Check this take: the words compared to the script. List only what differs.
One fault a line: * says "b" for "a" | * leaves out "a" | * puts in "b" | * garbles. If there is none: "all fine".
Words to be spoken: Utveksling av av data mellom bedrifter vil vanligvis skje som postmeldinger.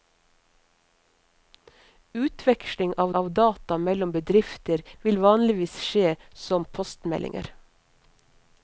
all fine